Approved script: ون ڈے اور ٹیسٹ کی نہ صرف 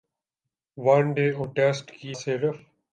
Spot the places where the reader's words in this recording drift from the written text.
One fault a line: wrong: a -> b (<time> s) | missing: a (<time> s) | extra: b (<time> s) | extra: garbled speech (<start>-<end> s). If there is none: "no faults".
missing: نہ (2.1 s)